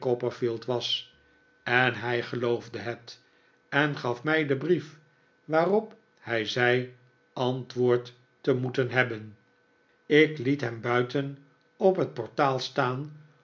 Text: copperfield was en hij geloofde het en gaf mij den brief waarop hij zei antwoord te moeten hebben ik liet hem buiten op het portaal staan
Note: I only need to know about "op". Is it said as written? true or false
true